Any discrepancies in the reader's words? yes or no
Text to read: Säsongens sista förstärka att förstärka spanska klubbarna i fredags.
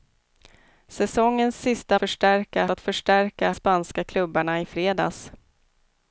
no